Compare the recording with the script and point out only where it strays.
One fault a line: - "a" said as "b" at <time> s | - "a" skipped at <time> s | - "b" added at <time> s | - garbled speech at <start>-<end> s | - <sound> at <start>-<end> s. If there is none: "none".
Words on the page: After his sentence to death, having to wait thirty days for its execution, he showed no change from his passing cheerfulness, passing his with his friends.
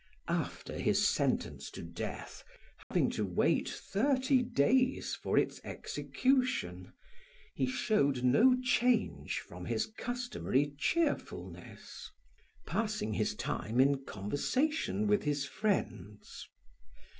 - dropout at 2.8-2.9 s
- "passing" said as "customary" at 9.8 s
- "time in conversation" added at 13.3 s